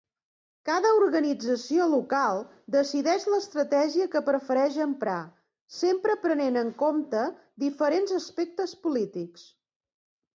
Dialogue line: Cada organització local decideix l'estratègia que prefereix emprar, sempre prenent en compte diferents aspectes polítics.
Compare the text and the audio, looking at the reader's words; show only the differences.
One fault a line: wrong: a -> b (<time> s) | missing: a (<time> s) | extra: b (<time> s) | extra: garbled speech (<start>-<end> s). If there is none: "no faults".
no faults